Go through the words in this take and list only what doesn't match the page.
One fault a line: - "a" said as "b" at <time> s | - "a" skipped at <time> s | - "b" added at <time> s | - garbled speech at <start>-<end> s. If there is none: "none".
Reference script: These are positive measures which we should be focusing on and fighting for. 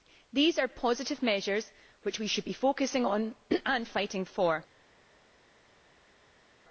none